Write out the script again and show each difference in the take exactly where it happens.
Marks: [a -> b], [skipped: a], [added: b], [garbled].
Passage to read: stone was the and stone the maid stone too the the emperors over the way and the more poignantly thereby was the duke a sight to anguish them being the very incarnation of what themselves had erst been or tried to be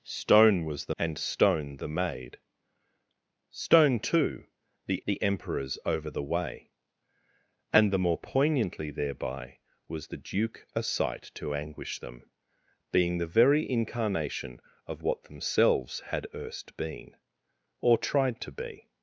stone was the and stone the maid stone too the the emperors over the way and the more poignantly thereby was the duke a sight to anguish them being the very incarnation of what themselves had erst been or tried to be